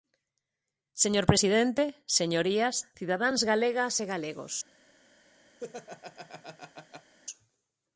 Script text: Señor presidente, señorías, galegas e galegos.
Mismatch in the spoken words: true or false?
true